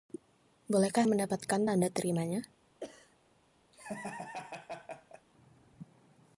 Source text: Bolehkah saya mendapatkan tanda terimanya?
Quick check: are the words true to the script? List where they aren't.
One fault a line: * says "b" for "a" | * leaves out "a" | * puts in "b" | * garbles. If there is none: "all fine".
* leaves out "saya"